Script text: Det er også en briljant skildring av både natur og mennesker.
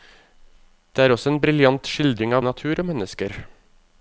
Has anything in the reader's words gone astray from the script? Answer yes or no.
yes